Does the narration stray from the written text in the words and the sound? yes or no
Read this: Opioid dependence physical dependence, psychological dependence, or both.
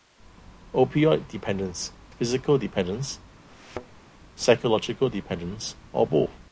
yes